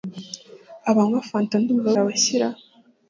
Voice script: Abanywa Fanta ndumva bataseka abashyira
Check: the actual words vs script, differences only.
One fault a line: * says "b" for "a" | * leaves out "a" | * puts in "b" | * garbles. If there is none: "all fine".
* leaves out "bataseka"